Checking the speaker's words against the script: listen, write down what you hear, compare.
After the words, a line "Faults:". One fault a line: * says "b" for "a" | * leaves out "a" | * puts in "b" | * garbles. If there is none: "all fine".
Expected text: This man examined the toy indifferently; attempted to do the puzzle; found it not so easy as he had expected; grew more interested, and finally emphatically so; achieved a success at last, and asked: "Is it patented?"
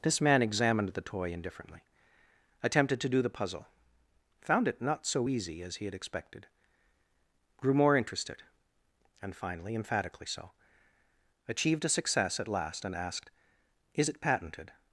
This man examined the toy indifferently; attempted to do the puzzle; found it not so easy as he had expected; grew more interested, and finally emphatically so; achieved a success at last, and asked: "Is it patented?"
Faults:
all fine